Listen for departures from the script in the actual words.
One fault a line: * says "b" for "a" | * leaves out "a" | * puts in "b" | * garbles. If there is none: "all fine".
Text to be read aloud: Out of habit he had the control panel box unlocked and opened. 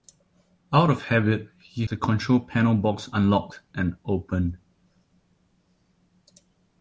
* leaves out "had"